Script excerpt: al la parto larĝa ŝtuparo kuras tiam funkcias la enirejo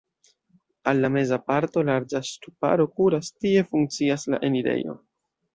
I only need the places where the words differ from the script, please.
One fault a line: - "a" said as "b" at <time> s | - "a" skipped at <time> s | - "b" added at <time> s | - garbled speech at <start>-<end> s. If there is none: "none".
- "meza" added at 1.2 s
- "tiam" said as "tie" at 3.4 s